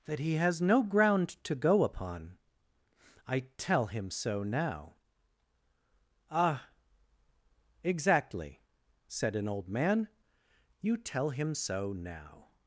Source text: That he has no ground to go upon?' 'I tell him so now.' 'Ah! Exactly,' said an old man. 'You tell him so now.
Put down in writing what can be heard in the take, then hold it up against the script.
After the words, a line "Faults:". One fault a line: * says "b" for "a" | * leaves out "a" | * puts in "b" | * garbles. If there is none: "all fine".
That he has no ground to go upon?' 'I tell him so now.' 'Ah! Exactly,' said an old man. 'You tell him so now.
Faults:
all fine